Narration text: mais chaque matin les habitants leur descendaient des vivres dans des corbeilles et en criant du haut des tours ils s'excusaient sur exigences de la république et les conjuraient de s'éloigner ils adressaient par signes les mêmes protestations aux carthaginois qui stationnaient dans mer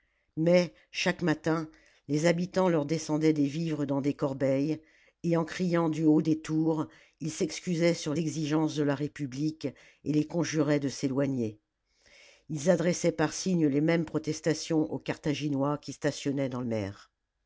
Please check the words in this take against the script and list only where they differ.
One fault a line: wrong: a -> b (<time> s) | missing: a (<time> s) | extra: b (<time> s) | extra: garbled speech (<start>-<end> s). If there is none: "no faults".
no faults